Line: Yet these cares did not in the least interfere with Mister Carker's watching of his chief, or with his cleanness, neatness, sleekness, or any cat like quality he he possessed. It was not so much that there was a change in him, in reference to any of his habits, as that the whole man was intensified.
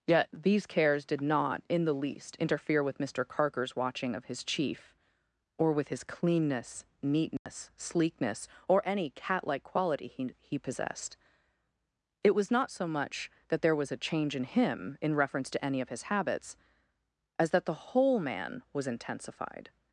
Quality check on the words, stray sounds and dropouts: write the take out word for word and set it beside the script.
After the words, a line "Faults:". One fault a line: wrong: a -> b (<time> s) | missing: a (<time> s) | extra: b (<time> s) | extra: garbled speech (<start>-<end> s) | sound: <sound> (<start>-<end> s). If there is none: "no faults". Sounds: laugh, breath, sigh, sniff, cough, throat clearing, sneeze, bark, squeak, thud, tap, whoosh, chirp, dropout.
Yet these cares did not in the least interfere with Mister Carker's watching of his chief, or with his cleanness, neatness, sleekness, or any cat like quality he he possessed. It was not so much that there was a change in him, in reference to any of his habits, as that the whole man was intensified.
Faults:
sound: dropout (7.4-7.5 s)